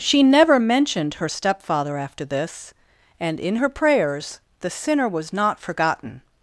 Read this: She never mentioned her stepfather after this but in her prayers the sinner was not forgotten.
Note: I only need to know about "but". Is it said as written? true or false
false